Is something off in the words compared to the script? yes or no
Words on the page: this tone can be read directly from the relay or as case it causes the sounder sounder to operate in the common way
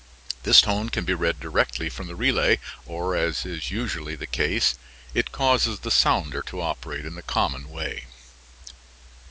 yes